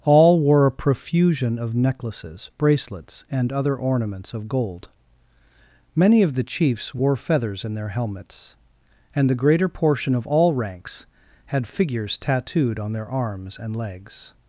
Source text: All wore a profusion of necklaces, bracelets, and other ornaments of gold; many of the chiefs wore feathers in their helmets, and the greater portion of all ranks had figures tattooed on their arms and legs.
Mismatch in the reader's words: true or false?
false